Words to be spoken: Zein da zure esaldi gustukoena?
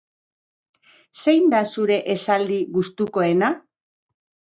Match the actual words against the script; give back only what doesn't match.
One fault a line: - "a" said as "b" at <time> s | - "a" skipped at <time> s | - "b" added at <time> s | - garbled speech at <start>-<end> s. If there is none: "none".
none